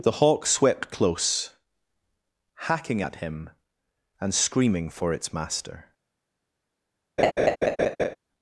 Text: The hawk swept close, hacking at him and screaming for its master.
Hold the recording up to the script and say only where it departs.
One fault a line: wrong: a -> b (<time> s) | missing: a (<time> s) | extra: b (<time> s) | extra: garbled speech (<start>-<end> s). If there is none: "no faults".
no faults